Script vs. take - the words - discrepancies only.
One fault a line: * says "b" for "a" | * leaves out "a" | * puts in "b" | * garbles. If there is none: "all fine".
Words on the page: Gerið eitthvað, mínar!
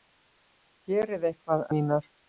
all fine